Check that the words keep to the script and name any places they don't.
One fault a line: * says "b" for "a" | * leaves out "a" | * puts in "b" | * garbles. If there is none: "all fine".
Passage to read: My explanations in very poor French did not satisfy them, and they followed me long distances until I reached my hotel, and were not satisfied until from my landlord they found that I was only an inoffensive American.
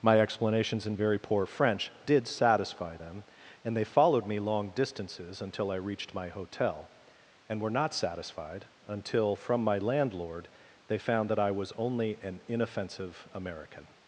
* leaves out "not"